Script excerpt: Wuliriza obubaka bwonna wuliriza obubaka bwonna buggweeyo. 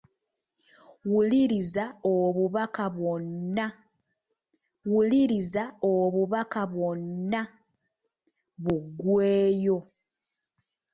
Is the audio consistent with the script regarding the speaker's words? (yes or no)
yes